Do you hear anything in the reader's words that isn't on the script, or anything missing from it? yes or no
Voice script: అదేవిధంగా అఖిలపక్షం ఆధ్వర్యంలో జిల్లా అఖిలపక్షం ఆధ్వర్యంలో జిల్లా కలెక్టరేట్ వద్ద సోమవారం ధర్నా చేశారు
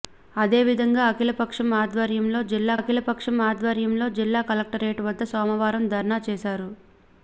no